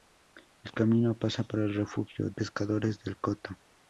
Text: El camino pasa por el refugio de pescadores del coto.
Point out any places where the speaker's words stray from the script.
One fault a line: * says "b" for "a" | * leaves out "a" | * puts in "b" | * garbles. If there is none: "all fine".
* leaves out "de"